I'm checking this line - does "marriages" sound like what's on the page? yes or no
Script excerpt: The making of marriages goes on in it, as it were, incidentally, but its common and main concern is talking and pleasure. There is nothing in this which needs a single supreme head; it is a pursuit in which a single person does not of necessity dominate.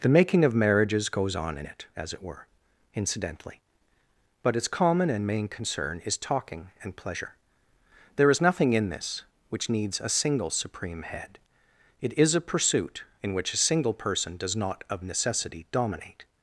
yes